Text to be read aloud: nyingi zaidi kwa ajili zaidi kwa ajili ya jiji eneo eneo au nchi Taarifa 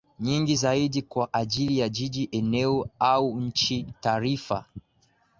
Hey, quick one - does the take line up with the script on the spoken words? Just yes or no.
no